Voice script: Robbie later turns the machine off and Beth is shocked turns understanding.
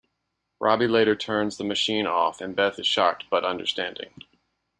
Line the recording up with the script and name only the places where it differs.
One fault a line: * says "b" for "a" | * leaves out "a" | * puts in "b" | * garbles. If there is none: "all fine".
* says "but" for "turns"